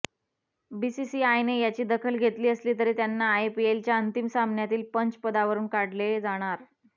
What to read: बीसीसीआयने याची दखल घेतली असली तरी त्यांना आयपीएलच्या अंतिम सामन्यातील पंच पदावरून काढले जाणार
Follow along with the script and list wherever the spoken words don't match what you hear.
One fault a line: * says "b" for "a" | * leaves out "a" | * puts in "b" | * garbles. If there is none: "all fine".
all fine